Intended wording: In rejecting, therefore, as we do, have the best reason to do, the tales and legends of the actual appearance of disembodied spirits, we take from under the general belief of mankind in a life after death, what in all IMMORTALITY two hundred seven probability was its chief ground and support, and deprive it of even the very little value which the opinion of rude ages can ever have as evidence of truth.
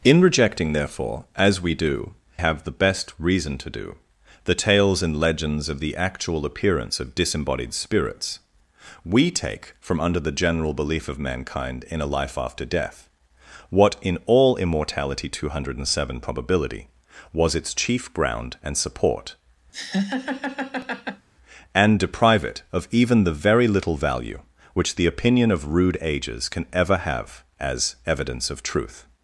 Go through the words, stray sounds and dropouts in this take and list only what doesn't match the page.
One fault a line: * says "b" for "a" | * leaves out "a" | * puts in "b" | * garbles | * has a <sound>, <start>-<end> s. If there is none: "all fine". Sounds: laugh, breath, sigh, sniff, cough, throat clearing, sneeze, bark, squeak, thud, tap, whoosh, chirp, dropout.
* has a laugh, 19.7-21.3 s